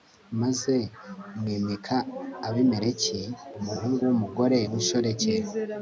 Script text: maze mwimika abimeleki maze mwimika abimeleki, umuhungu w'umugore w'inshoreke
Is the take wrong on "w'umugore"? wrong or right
right